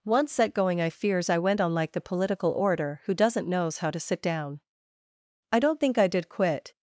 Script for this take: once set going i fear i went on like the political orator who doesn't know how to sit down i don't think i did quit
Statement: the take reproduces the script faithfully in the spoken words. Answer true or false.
false